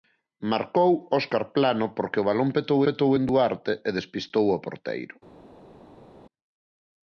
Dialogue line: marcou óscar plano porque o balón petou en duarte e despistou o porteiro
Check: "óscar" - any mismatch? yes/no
no